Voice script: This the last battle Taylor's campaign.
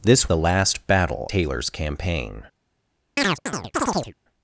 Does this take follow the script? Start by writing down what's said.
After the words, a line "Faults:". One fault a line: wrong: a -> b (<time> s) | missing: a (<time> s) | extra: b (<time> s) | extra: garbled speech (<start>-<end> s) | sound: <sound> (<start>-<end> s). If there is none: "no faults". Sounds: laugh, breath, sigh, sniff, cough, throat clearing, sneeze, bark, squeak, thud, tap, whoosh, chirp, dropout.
This the last battle Taylor's campaign.
Faults:
sound: chirp (3.2-4.1 s)